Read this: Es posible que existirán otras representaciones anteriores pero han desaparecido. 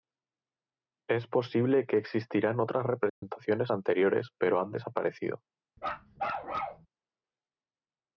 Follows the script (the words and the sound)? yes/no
no